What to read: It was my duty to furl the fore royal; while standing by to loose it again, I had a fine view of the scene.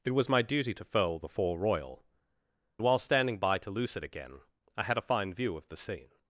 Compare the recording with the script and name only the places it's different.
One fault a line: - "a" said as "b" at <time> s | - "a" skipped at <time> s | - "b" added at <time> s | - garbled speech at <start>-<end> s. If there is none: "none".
none